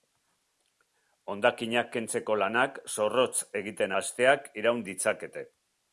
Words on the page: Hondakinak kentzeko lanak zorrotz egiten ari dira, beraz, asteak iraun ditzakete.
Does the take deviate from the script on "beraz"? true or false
true